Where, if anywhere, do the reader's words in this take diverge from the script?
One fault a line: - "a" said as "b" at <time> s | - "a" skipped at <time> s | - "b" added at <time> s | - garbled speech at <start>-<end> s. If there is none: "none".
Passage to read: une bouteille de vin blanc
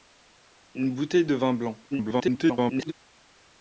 - garbled speech at 1.9-2.9 s